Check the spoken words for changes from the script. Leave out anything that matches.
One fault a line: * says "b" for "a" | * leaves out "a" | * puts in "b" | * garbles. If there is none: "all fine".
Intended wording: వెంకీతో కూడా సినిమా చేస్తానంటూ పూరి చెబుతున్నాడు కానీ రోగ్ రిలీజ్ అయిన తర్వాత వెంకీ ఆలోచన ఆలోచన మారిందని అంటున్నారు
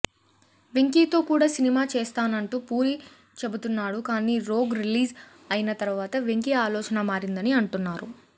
* leaves out "ఆలోచన"